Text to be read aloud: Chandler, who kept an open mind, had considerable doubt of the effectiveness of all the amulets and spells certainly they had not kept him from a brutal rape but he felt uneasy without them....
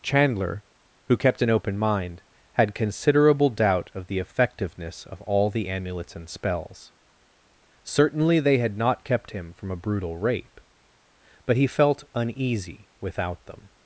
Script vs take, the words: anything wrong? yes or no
no